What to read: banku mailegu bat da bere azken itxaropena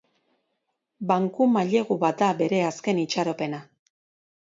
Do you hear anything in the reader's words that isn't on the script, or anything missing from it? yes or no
no